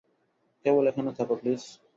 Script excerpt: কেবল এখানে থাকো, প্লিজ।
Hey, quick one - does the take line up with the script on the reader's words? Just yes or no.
yes